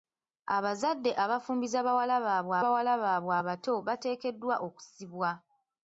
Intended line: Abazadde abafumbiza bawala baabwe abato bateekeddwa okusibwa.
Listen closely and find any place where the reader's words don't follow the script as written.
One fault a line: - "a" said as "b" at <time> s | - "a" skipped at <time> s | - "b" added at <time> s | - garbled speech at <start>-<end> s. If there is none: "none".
- "bawala baabwe" added at 2.6 s